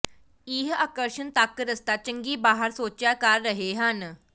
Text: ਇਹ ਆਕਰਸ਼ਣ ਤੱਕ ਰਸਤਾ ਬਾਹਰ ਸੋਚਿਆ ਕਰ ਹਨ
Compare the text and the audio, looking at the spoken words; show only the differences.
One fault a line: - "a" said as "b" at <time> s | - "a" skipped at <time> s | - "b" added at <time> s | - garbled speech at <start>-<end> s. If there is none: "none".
- "ਚੰਗੀ" added at 2.0 s
- "ਰਹੇ" added at 3.4 s